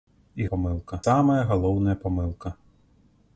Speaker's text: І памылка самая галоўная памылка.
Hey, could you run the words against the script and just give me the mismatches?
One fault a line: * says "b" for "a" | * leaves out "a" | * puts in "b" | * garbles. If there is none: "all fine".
all fine